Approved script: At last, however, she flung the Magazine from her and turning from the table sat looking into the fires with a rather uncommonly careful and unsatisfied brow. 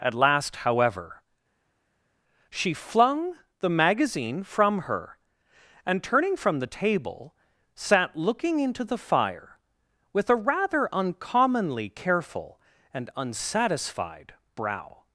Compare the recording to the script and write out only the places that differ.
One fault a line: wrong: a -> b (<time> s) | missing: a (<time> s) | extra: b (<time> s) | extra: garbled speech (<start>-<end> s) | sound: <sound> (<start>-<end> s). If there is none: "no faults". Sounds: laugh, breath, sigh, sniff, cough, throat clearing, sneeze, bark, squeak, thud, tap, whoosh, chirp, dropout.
wrong: fires -> fire (9.0 s)